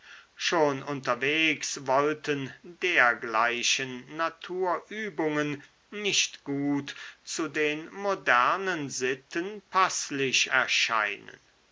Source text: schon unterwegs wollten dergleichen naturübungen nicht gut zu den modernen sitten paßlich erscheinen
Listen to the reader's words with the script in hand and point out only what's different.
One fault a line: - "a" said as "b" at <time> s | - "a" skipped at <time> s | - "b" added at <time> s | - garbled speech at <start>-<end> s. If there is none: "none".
none